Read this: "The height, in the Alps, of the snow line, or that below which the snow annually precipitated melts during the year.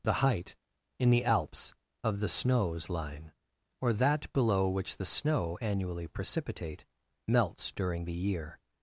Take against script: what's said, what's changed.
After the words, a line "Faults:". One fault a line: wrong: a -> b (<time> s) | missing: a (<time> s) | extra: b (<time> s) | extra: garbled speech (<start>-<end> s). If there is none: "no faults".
"The height, in the Alps, of the snows line, or that below which the snow annually precipitate melts during the year.
Faults:
wrong: snow -> snows (2.3 s)
wrong: precipitated -> precipitate (6.1 s)